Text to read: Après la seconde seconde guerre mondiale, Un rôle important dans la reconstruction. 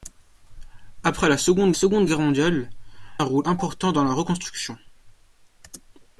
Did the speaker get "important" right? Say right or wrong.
right